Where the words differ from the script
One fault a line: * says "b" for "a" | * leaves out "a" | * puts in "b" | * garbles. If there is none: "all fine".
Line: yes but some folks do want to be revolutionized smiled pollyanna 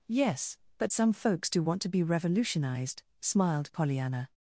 all fine